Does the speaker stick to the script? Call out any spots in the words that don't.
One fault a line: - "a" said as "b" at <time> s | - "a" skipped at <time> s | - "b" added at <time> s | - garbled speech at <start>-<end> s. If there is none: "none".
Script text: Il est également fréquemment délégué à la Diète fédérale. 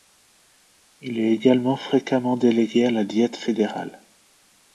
none